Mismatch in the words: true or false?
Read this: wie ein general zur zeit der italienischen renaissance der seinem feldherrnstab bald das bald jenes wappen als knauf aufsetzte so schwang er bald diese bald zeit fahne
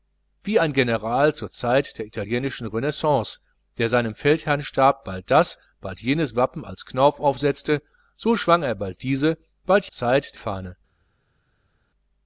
false